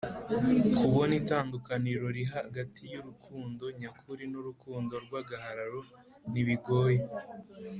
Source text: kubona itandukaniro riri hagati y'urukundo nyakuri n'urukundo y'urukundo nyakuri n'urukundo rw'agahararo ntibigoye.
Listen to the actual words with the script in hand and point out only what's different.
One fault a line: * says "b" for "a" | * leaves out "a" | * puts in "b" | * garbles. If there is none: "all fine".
* leaves out "y'urukundo nyakuri n'urukundo"